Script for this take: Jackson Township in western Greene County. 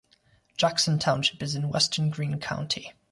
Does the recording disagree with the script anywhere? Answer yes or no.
yes